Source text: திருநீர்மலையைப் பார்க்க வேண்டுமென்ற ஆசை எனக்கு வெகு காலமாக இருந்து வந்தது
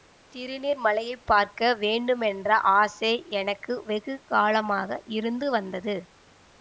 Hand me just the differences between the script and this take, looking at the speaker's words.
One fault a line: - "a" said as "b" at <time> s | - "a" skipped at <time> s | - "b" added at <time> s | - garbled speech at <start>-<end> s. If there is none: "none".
none